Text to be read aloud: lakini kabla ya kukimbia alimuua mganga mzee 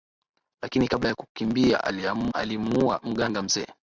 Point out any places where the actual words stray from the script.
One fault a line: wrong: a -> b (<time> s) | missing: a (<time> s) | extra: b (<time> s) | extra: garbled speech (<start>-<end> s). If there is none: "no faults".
no faults